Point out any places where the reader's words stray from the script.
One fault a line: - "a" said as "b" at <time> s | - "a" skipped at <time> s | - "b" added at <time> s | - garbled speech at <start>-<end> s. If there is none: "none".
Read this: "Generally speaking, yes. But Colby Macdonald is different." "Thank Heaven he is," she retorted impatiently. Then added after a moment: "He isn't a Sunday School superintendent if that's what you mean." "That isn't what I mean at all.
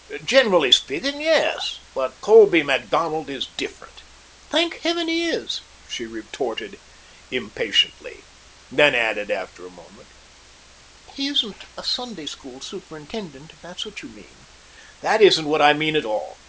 none